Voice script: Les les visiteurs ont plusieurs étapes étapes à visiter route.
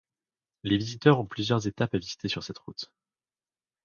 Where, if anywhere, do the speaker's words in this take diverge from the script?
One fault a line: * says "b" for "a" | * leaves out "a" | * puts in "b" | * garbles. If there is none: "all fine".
* leaves out "les"
* leaves out "étapes"
* puts in "sur cette"